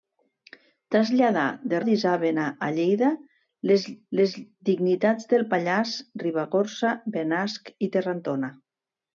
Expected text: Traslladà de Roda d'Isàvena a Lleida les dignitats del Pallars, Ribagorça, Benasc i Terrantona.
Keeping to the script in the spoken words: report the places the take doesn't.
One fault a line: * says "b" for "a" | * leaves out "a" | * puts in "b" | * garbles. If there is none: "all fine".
* leaves out "Roda"
* puts in "les"